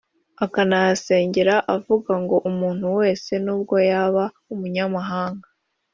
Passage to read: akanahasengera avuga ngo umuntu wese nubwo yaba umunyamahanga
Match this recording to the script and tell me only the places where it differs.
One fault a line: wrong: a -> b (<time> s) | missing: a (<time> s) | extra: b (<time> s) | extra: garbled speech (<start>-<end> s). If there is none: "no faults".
no faults